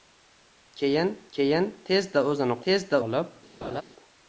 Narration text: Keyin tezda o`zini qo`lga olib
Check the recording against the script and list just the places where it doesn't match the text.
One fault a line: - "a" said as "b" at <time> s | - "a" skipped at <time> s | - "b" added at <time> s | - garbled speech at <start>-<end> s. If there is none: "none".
- "keyin" added at 1.4 s
- "qo`lga" said as "tezda" at 2.7 s